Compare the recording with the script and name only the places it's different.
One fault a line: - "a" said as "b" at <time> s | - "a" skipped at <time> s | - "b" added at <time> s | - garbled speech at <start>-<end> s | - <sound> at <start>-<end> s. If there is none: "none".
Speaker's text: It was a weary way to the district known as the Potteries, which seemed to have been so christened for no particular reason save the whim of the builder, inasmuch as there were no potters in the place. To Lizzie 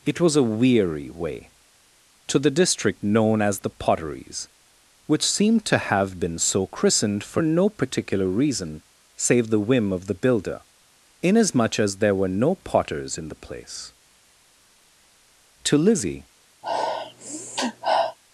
- sniff at 16.6-18.2 s